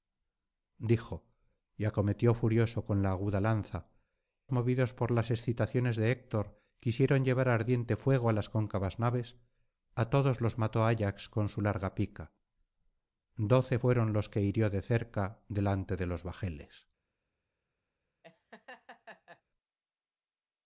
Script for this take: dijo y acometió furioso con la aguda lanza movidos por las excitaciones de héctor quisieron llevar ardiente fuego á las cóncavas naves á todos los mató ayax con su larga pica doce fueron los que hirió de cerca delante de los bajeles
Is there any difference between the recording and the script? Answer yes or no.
no